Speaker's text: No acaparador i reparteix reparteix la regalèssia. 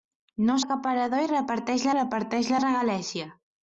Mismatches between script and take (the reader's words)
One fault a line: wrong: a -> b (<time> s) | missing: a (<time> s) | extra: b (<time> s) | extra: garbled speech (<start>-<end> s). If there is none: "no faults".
no faults